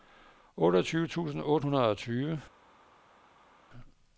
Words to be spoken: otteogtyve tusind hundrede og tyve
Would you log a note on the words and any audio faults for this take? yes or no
yes